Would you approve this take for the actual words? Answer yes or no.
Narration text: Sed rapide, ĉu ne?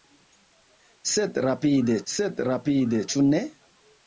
no